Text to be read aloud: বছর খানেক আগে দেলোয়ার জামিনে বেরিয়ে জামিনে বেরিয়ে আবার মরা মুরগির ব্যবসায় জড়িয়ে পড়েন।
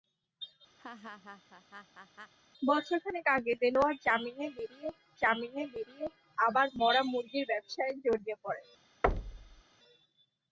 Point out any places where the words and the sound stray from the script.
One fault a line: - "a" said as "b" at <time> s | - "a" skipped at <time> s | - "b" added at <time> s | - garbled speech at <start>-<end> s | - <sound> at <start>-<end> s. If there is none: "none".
- laugh at 0.8-2.3 s
- thud at 9.0-9.6 s